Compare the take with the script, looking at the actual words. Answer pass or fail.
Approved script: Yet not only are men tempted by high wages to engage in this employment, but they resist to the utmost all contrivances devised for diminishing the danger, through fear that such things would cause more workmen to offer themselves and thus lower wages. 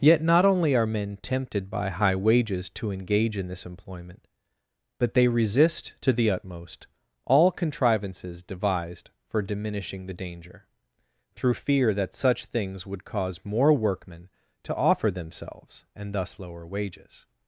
pass